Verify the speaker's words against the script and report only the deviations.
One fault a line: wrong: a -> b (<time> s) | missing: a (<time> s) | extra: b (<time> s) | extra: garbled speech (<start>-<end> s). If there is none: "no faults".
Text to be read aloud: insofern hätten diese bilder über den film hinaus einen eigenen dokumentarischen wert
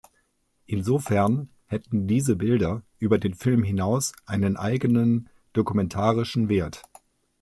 no faults